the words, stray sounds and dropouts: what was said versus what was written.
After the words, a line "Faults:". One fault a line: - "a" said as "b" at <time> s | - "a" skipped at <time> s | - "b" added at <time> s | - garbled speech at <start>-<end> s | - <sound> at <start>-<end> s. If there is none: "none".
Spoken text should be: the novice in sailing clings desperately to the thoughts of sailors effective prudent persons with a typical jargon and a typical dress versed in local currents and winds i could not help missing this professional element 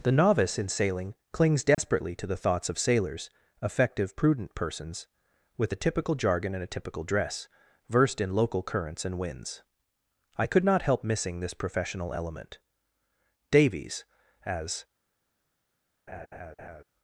the novice in sailing clings desperately to the thoughts of sailors effective prudent persons with a typical jargon and a typical dress versed in local currents and winds i could not help missing this professional element davies as
Faults:
- dropout at 1.7-1.8 s
- "davies as" added at 13.5 s
- laugh at 16.1-16.8 s